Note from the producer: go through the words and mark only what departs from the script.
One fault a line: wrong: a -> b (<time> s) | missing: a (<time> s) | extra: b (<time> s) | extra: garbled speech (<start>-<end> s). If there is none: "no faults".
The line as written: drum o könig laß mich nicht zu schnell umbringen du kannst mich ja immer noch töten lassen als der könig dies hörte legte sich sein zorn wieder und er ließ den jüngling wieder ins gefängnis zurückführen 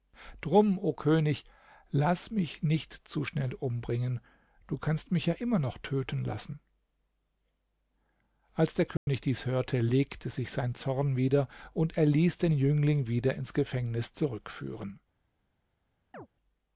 no faults